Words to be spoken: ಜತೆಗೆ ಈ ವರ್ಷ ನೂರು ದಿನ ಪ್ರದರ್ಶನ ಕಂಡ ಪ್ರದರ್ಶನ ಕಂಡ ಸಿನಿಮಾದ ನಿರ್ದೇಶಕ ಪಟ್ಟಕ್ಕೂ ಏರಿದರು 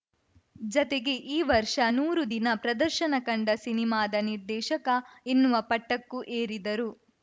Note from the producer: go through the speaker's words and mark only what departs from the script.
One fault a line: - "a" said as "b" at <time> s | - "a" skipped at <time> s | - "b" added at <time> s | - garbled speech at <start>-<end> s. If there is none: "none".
- "ಪ್ರದರ್ಶನ ಕಂಡ" skipped at 3.5 s
- "ಎನ್ನುವ" added at 5.3 s